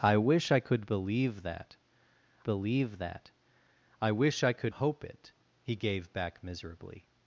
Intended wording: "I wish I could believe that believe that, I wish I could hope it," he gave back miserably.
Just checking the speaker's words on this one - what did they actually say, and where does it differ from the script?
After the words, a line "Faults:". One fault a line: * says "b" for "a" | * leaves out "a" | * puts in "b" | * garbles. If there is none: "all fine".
"I wish I could believe that believe that, I wish I could hope it," he gave back miserably.
Faults:
all fine